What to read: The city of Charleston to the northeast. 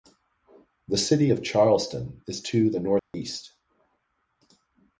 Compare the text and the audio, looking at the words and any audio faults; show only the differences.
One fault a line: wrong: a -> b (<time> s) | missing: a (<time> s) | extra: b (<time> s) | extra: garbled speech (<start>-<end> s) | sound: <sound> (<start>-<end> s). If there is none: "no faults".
extra: is (2.2 s)
sound: dropout (3.0-3.1 s)